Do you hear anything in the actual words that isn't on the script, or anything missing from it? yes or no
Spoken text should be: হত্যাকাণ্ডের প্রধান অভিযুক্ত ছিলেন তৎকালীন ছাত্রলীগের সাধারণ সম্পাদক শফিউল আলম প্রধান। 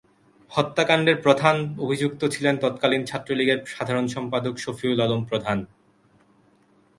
no